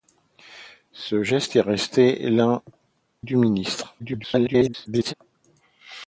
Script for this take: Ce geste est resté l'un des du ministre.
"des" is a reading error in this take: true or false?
true